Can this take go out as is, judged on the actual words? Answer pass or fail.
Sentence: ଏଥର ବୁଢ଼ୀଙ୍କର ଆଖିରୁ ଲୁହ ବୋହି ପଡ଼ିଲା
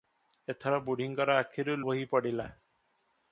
fail